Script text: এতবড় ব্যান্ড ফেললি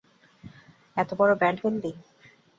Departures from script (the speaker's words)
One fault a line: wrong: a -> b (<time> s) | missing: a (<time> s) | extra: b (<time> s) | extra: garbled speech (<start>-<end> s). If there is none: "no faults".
no faults